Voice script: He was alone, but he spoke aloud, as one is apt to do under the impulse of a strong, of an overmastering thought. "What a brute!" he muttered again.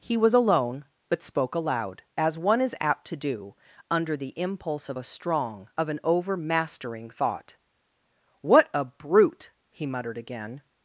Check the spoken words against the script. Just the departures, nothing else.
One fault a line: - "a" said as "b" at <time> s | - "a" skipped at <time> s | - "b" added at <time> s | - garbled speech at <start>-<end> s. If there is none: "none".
- "he" skipped at 1.2 s